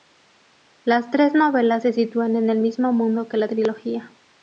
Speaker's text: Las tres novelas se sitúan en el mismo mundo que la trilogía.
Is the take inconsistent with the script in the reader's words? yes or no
no